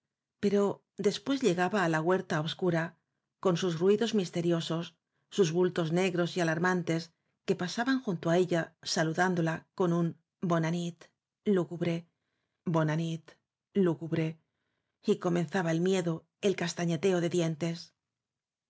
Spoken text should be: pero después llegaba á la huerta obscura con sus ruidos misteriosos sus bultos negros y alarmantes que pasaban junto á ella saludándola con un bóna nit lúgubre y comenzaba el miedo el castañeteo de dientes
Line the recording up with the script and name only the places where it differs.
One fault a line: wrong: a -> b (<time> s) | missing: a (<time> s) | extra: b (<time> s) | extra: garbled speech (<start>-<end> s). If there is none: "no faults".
extra: bóna nit lúgubre (12.7 s)